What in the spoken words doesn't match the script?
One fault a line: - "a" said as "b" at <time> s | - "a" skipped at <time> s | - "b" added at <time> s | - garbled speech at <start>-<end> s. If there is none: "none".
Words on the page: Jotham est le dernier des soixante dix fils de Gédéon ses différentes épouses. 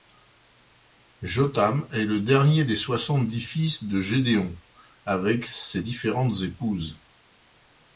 - "avec" added at 5.0 s